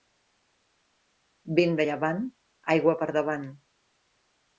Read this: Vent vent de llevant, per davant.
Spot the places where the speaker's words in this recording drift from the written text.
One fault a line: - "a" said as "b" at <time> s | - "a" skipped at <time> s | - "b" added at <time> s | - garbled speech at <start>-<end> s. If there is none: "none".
- "vent" skipped at 1.8 s
- "aigua" added at 2.7 s